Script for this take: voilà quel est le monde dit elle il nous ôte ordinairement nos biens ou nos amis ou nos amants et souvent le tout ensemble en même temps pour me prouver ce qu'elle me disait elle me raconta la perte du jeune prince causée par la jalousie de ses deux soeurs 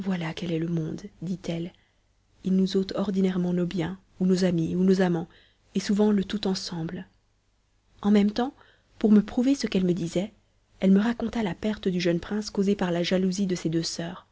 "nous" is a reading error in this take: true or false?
false